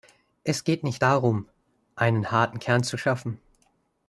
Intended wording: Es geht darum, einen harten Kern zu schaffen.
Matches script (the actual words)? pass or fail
fail